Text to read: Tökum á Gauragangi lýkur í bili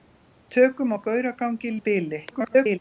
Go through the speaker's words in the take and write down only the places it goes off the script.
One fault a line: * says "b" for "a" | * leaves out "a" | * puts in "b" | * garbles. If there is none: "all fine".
* leaves out "lýkur"
* garbles